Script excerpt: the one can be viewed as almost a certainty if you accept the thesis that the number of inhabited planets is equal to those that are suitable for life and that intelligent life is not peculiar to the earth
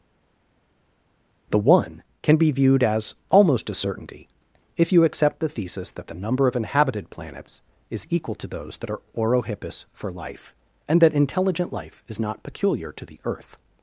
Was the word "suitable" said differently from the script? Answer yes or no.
yes